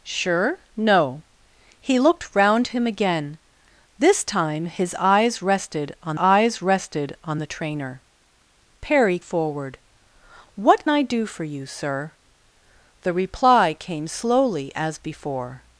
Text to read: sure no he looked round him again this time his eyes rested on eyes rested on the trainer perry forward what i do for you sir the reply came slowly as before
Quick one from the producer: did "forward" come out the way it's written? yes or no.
yes